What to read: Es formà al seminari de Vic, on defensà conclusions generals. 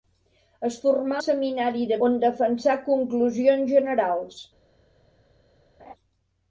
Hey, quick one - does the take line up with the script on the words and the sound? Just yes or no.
no